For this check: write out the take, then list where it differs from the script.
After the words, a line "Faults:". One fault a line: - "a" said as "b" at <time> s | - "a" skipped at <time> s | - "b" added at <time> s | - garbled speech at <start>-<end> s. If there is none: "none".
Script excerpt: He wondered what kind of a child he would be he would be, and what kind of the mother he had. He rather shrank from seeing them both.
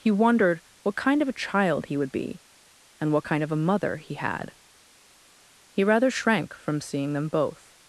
He wondered what kind of a child he would be, and what kind of a mother he had. He rather shrank from seeing them both.
Faults:
- "he would be" skipped at 2.4 s
- "the" said as "a" at 3.5 s